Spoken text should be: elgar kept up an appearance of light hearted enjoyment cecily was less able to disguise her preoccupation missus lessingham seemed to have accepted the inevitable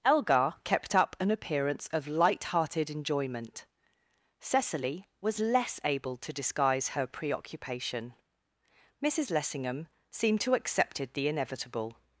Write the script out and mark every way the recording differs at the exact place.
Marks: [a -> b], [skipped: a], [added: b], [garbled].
elgar kept up an appearance of light hearted enjoyment cecily was less able to disguise her preoccupation missus lessingham seemed to [skipped: have] accepted the inevitable